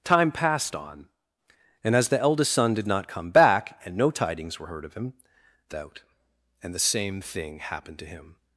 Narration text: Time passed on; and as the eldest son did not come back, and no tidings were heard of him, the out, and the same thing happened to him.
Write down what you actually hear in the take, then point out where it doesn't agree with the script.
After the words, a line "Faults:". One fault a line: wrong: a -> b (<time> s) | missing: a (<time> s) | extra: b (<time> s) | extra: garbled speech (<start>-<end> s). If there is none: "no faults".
Time passed on; and as the eldest son did not come back, and no tidings were heard of him, the out, and the same thing happened to him.
Faults:
no faults